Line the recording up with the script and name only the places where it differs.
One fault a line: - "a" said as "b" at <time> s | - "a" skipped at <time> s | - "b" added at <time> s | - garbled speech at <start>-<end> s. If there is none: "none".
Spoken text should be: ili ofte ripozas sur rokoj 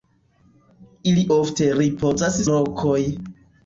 - "sur" skipped at 2.4 s